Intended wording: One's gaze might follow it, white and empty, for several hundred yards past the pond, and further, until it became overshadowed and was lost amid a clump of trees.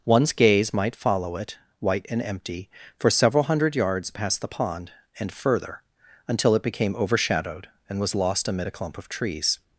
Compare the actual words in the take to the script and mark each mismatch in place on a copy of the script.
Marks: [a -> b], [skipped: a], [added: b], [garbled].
One's gaze might follow it, white and empty, for several hundred yards past the pond, and further, until it became overshadowed and was lost amid a clump of trees.